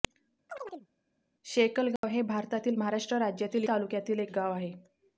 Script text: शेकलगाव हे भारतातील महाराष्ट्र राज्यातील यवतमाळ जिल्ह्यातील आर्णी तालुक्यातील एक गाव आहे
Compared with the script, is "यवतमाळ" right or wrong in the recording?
wrong